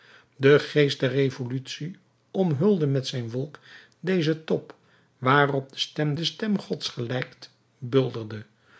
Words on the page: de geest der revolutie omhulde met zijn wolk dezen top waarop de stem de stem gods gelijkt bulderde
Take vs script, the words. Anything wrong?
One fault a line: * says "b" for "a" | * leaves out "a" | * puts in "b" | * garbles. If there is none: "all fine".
all fine